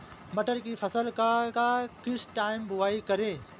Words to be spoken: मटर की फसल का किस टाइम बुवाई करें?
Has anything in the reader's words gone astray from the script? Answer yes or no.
yes